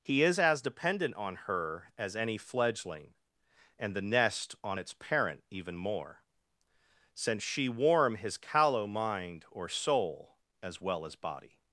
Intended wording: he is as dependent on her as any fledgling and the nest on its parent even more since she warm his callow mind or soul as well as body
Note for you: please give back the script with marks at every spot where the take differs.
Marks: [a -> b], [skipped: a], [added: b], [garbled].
he is as dependent on her as any fledgling and the nest on its parent even more since she warm his callow mind or soul as well as body